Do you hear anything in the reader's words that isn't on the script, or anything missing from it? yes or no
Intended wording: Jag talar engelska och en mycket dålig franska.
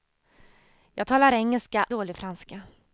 yes